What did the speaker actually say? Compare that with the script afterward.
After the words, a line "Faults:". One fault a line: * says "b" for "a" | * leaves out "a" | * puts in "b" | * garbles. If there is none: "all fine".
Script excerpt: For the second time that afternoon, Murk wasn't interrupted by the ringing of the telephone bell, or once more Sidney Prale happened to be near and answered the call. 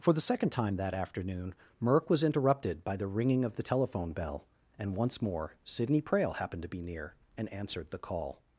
For the second time that afternoon, Murk was interrupted by the ringing of the telephone bell, and once more Sidney Prale happened to be near and answered the call.
Faults:
* says "was" for "wasn't"
* says "and" for "or"